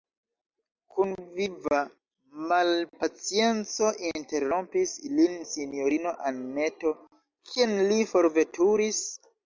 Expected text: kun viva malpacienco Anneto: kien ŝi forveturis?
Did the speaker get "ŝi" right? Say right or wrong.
wrong